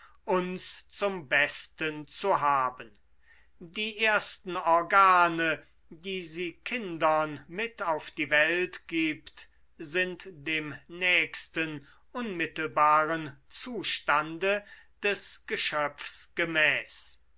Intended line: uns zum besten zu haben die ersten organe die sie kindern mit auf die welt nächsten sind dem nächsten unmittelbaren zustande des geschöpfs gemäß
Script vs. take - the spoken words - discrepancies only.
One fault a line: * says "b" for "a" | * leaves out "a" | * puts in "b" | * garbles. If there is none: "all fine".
* says "gibt" for "nächsten"